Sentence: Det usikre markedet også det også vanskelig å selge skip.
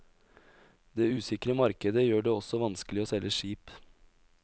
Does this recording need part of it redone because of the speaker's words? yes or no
yes